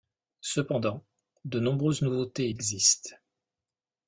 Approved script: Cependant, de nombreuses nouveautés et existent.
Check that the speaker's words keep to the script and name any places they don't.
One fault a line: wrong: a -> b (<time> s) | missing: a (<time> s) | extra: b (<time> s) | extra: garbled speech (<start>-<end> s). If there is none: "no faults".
no faults